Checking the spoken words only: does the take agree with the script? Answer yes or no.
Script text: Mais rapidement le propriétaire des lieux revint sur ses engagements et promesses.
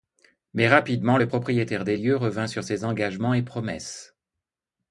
yes